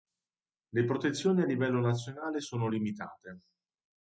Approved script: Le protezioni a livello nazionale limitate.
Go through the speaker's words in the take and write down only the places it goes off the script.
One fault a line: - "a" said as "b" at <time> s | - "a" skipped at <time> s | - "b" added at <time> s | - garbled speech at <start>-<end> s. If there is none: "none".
- "sono" added at 2.4 s